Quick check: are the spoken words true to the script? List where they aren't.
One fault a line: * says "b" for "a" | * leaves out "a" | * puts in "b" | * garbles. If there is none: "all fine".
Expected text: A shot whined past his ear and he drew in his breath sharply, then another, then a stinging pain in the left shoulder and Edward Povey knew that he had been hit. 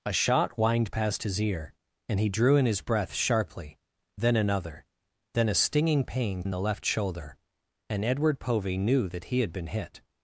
all fine